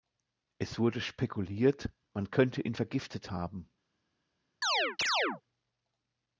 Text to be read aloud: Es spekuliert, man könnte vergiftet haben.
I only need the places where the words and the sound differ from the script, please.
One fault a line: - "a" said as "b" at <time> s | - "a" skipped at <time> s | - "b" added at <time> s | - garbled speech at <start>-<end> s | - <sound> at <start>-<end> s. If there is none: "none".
- "wurde" added at 0.8 s
- "ihn" added at 2.6 s
- chirp at 4.6-5.4 s